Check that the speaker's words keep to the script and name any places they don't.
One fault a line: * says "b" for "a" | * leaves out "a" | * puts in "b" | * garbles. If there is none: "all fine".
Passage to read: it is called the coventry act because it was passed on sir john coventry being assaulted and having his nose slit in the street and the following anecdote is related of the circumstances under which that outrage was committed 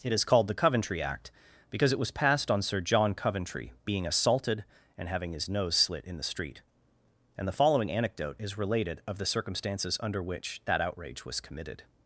all fine